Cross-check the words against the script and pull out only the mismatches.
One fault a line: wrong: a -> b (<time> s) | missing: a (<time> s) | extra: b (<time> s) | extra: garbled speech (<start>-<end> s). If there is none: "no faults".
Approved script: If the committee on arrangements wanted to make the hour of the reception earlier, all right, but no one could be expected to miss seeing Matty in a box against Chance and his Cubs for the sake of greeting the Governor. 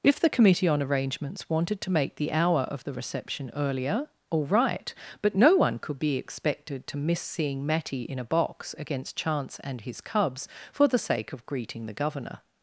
no faults